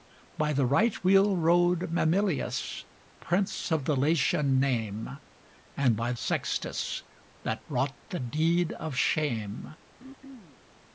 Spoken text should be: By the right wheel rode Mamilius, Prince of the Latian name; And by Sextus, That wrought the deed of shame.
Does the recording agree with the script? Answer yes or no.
yes